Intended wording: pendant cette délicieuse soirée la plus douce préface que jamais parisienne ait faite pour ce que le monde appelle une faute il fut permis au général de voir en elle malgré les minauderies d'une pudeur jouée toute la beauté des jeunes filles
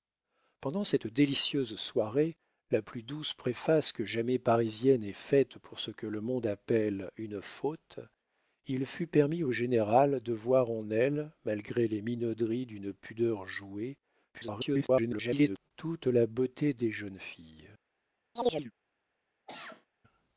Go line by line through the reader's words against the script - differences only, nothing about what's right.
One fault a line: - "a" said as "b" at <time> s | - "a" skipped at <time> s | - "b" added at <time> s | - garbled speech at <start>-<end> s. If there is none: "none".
- garbled speech at 14.3-15.7 s